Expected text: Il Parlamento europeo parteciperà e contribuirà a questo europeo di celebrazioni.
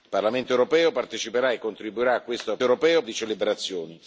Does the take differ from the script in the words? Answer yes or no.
no